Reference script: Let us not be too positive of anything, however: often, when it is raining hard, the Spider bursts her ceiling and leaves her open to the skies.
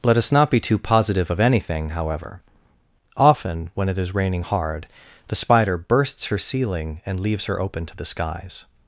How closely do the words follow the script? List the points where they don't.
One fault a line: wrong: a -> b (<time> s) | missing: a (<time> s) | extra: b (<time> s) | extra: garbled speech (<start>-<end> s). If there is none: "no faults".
no faults